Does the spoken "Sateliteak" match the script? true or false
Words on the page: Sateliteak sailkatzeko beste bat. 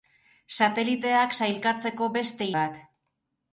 true